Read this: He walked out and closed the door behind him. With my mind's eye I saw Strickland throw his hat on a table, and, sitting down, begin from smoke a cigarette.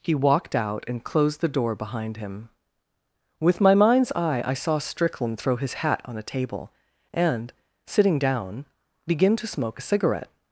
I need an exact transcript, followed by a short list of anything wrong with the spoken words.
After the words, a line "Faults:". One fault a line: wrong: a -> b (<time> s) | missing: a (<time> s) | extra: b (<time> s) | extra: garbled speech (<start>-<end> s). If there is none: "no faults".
He walked out and closed the door behind him. With my mind's eye I saw Strickland throw his hat on a table, and, sitting down, begin to smoke a cigarette.
Faults:
wrong: from -> to (9.4 s)